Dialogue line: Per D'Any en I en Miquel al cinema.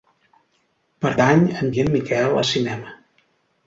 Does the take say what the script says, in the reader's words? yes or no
yes